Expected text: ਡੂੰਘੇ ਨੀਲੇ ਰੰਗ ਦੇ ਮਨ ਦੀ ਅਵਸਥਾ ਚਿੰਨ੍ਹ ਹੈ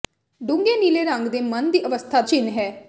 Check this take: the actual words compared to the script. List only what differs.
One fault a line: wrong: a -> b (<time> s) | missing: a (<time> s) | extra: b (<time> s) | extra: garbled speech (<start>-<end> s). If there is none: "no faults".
no faults